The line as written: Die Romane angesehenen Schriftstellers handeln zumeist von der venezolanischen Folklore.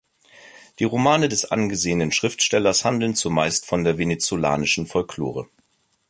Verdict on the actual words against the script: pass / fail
fail